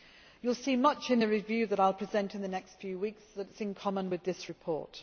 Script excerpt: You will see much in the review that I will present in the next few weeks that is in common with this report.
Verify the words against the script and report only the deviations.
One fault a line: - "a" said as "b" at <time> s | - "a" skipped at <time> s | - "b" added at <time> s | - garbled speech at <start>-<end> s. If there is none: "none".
none